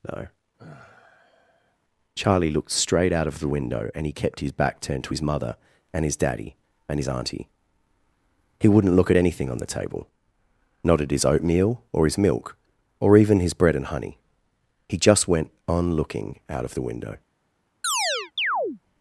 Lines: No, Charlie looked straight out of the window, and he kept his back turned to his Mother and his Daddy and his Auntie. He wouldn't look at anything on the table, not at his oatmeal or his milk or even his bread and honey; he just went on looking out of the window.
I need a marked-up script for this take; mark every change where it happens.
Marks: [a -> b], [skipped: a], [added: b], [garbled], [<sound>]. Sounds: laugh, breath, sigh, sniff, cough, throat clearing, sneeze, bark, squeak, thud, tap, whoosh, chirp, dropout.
No, [sigh] Charlie looked straight out of the window, and he kept his back turned to his Mother and his Daddy and his Auntie. He wouldn't look at anything on the table, not at his oatmeal or his milk or even his bread and honey; he just went on looking out of the window. [chirp]